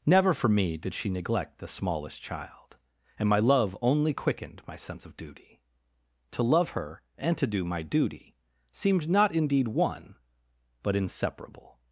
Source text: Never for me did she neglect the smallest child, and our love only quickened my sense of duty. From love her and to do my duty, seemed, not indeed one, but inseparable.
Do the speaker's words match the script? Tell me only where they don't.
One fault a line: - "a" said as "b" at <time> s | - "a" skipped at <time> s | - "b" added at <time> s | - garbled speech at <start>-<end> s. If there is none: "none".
- "our" said as "my" at 3.3 s
- "From" said as "To" at 6.3 s